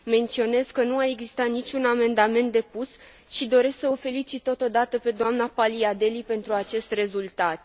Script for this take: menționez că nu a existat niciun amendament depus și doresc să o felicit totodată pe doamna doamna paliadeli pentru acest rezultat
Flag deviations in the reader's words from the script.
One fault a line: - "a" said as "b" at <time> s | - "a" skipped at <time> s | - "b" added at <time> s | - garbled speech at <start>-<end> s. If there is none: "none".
- "doamna" skipped at 5.5 s